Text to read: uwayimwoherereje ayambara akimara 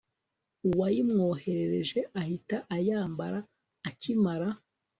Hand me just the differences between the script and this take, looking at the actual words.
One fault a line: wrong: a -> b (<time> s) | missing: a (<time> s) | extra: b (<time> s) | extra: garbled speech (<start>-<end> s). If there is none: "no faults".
extra: ahita (2.2 s)